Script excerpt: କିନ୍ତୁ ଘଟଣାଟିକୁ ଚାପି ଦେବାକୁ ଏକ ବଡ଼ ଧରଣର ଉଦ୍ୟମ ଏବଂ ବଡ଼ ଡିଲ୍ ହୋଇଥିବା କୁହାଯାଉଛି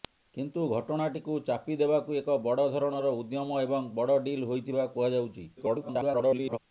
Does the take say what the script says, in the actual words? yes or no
no